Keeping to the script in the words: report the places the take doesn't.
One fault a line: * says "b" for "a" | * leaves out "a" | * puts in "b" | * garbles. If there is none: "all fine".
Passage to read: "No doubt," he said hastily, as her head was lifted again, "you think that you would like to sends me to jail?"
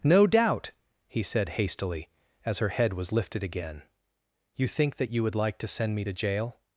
* says "send" for "sends"